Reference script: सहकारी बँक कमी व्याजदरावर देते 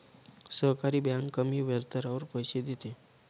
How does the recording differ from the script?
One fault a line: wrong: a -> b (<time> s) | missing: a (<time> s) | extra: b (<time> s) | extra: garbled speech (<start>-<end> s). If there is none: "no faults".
extra: पैसे (2.3 s)